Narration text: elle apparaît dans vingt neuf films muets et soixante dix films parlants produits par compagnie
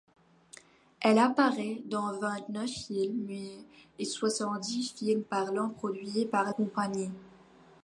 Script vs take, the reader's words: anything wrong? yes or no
no